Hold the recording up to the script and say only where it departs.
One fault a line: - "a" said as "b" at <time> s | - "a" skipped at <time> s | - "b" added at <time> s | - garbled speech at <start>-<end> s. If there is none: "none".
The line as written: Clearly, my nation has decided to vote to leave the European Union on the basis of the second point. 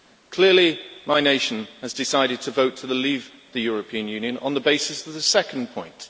none